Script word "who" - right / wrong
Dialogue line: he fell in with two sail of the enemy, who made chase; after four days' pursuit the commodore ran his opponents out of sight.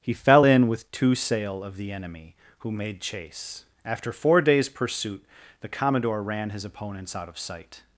right